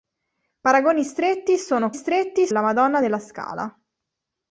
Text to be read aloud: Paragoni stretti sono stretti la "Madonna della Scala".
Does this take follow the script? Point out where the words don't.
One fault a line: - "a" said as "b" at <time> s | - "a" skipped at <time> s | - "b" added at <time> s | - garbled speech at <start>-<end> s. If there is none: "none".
none